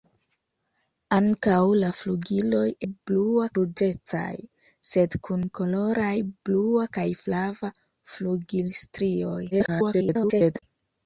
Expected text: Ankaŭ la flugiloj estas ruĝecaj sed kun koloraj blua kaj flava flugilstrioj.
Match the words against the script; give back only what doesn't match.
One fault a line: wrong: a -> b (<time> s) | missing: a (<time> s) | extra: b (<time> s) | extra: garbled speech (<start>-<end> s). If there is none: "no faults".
wrong: estas -> blua (2.9 s)
extra: garbled speech (9.5-10.6 s)